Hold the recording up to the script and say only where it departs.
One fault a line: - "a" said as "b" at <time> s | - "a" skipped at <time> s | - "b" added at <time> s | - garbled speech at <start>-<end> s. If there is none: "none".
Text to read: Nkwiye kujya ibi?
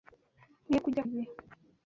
none